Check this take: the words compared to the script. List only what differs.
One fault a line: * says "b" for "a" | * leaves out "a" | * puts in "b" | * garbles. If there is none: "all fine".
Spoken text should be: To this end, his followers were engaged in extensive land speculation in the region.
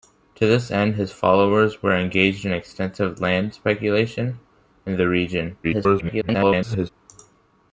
* garbles